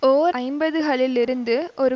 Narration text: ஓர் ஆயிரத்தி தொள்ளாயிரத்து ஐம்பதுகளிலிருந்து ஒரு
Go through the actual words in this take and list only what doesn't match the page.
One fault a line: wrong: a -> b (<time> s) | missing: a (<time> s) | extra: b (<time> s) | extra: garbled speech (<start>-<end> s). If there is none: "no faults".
missing: ஆயிரத்தி தொள்ளாயிரத்து (0.4 s)